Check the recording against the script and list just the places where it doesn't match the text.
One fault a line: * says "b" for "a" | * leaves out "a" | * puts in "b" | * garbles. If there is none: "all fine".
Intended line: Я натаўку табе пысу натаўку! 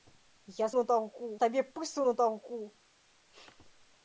all fine